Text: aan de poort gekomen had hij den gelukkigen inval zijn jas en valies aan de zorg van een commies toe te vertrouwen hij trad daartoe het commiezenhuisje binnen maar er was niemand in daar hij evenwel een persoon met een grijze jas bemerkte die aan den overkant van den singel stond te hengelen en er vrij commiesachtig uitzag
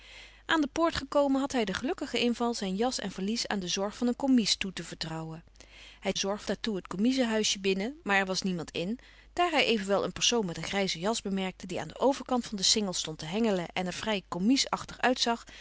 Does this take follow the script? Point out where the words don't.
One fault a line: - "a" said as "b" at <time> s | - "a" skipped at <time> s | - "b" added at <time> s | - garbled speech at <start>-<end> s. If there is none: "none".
- "trad" said as "zorg" at 6.1 s